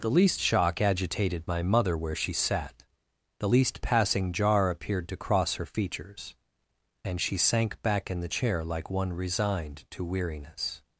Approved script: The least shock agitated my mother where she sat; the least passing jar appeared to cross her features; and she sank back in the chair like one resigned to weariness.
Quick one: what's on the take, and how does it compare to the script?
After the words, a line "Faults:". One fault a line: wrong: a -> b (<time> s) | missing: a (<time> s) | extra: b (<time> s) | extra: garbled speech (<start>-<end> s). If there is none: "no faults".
The least shock agitated my mother where she sat; the least passing jar appeared to cross her features; and she sank back in the chair like one resigned to weariness.
Faults:
no faults